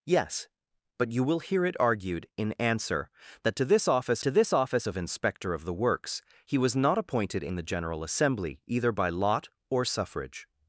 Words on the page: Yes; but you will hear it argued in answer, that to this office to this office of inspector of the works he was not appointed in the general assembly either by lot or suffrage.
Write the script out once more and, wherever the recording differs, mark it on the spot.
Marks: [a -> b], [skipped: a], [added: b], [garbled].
Yes; but you will hear it argued in answer, that to this office to this office of inspector of the works he was not appointed in the general assembly either by lot or suffrage.